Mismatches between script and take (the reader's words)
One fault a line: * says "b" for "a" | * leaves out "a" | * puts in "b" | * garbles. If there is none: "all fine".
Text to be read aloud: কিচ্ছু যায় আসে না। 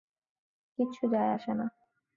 all fine